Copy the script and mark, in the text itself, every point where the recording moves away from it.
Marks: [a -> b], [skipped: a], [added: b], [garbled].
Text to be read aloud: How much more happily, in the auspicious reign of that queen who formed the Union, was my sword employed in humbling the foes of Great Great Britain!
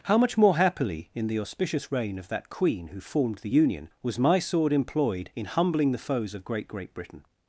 How much more happily, in the auspicious reign of that queen who formed the Union, was my sword employed in humbling the foes of Great Great Britain!